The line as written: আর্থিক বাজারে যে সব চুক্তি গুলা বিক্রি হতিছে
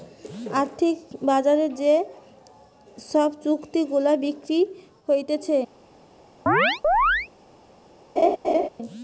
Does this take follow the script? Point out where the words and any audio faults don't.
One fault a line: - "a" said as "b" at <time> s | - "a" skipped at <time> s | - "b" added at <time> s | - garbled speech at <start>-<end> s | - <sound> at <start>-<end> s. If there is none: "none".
- chirp at 6.5-7.3 s
- laugh at 8.2-8.7 s